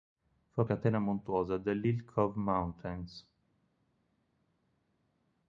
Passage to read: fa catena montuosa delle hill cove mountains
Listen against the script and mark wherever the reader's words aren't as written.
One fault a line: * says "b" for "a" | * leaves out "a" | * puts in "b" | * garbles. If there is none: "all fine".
all fine